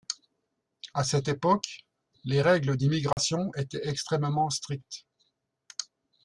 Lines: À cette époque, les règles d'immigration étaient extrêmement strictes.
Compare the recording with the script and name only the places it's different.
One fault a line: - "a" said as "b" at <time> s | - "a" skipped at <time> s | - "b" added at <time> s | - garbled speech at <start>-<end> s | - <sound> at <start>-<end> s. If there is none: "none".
- dropout at 3.1-3.2 s